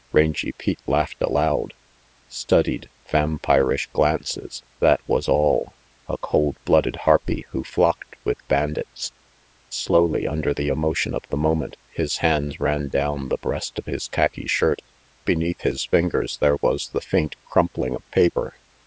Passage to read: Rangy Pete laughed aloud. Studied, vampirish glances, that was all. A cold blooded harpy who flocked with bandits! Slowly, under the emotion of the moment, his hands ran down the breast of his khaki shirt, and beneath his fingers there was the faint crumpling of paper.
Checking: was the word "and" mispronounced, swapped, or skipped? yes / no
yes